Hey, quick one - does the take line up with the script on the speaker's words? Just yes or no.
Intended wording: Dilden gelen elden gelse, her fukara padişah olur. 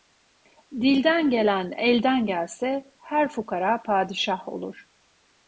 yes